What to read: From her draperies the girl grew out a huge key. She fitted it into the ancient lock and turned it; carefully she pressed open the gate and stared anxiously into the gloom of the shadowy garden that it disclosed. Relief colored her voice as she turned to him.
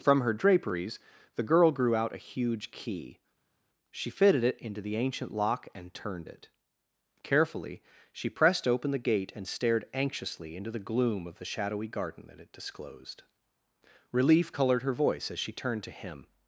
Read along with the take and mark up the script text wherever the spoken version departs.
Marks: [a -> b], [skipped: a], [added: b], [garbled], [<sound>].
From her draperies the girl grew out a huge key. She fitted it into the ancient lock and turned it; carefully she pressed open the gate and stared anxiously into the gloom of the shadowy garden that it disclosed. Relief colored her voice as she turned to him.